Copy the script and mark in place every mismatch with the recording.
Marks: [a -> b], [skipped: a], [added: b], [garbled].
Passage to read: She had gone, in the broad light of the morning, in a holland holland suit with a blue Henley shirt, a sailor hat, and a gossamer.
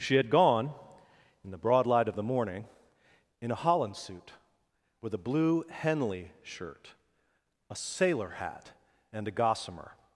She had gone, in the broad light of the morning, in a holland [skipped: holland] suit with a blue Henley shirt, a sailor hat, and a gossamer.